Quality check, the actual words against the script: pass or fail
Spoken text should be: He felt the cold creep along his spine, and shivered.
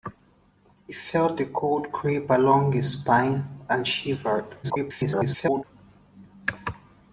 fail